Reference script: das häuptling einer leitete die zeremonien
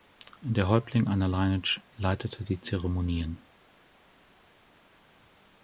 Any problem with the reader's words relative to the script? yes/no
yes